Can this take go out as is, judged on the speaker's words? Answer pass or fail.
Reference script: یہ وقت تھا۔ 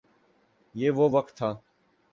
fail